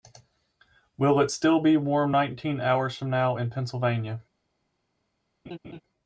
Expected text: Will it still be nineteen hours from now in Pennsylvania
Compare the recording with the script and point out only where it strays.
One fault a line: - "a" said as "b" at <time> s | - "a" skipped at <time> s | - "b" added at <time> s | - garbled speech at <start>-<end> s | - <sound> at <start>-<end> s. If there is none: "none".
- "warm" added at 1.8 s
- laugh at 5.5-5.8 s